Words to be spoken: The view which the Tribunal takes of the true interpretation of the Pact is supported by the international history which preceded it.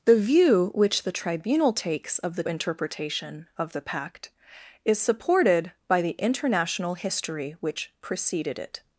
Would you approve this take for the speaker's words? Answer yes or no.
no